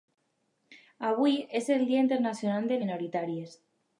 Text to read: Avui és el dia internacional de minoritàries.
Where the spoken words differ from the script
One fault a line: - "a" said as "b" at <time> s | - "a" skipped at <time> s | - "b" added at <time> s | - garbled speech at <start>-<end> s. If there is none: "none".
none